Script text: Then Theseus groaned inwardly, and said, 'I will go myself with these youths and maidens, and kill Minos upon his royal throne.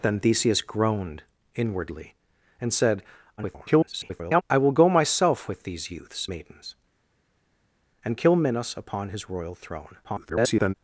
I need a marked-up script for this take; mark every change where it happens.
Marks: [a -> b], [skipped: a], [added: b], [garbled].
Then Theseus groaned inwardly, and said, [garbled] 'I will go myself with these youths [skipped: and] maidens, and kill Minos upon his royal throne. [garbled]